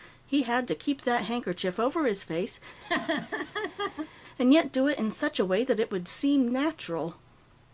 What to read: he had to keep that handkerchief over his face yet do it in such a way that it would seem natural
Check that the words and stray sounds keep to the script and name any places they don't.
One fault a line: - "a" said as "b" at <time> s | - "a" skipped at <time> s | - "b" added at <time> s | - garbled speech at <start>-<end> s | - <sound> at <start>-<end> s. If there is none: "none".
- laugh at 2.8-4.1 s
- "and" added at 4.4 s